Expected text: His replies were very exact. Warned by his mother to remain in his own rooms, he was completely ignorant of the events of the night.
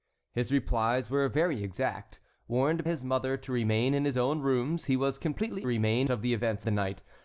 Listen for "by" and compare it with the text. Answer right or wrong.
wrong